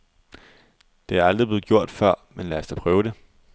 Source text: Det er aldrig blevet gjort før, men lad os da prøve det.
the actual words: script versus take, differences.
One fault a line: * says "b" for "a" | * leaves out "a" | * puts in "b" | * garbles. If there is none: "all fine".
all fine